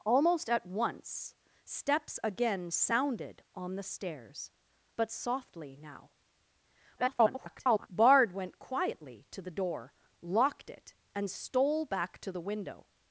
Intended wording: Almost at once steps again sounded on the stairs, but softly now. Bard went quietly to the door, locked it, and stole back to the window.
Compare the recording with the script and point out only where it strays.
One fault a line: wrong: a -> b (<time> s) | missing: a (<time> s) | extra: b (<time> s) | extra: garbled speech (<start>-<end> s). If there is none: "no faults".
extra: garbled speech (7.0-7.9 s)